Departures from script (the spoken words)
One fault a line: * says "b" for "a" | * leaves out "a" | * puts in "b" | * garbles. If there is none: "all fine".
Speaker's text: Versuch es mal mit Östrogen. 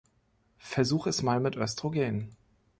all fine